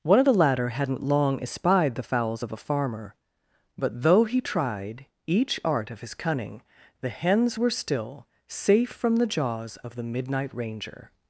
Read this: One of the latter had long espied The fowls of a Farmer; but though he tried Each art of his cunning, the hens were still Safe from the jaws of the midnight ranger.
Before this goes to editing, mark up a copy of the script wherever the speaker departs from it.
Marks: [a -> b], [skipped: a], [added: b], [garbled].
One of the latter [had -> hadn't] long espied The fowls of a Farmer; but though he tried Each art of his cunning, the hens were still Safe from the jaws of the midnight ranger.